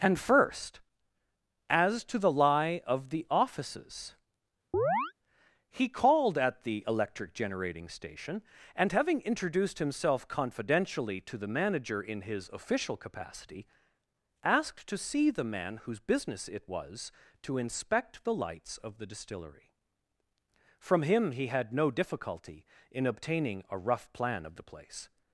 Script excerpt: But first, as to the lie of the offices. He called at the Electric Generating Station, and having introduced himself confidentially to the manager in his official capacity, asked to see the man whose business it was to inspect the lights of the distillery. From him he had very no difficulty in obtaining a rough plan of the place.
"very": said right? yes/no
no